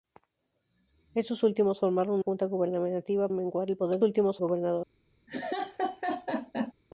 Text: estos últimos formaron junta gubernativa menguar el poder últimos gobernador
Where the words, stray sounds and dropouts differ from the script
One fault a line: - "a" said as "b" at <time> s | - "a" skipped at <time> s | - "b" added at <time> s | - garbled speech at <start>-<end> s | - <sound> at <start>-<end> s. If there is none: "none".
- laugh at 5.3-6.7 s